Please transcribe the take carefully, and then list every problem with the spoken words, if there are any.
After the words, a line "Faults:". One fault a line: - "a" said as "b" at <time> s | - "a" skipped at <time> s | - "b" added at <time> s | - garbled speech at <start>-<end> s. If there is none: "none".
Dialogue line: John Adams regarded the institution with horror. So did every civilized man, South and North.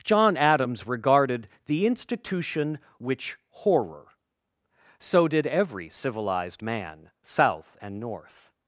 John Adams regarded the institution which horror. So did every civilized man, South and North.
Faults:
- "with" said as "which" at 3.0 s